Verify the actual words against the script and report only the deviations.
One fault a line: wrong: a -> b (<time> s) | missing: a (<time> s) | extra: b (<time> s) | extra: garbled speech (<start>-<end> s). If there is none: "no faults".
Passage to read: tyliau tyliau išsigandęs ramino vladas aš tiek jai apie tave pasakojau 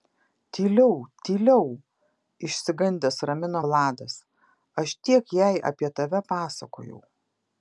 no faults